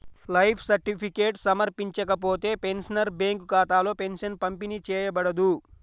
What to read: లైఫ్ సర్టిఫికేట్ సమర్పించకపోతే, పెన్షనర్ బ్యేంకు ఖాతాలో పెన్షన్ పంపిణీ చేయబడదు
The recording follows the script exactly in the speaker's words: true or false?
true